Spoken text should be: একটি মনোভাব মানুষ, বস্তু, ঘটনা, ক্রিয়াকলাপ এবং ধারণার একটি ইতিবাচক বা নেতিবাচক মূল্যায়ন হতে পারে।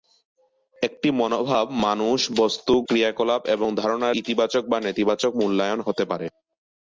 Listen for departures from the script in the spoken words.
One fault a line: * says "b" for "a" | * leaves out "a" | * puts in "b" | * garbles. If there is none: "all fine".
* leaves out "ঘটনা"
* leaves out "একটি"